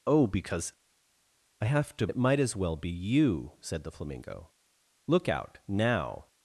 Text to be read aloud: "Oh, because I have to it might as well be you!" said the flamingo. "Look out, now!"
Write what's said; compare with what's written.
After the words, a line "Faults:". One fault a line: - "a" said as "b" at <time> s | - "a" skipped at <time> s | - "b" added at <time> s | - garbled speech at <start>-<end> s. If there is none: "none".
"Oh, because I have to it might as well be you!" said the flamingo. "Look out, now!"
Faults:
none